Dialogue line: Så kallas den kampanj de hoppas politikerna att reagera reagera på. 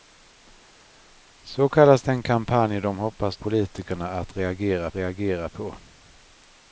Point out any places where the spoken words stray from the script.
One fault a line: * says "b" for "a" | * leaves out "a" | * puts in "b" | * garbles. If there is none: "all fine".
all fine